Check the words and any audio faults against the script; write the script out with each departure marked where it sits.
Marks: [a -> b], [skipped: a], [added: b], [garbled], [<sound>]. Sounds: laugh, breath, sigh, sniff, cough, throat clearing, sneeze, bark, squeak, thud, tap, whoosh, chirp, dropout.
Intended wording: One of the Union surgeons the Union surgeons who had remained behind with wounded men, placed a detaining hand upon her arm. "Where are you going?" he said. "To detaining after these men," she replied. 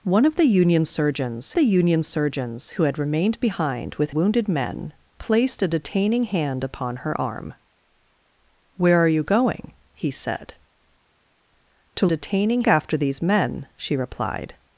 One of the Union surgeons the Union surgeons who had remained behind with wounded men, placed a detaining hand upon her arm. "Where are you going?" he said. "To detaining after these men," she replied.